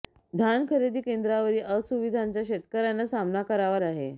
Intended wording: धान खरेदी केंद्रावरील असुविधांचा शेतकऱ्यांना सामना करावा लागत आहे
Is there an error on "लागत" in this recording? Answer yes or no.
yes